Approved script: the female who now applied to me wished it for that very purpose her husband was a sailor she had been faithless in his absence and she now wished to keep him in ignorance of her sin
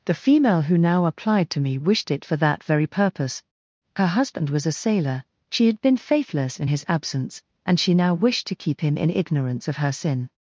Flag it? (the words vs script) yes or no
no